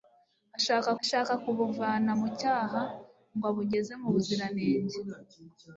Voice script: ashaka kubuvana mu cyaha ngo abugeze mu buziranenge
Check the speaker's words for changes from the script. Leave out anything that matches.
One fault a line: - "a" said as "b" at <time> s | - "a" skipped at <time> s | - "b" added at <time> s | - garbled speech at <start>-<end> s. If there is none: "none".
- "ashaka" added at 1.0 s